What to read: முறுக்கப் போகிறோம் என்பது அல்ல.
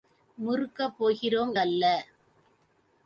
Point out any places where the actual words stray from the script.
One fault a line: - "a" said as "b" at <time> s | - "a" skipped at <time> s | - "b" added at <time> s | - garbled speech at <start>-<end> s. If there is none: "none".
- "என்பது" skipped at 1.5 s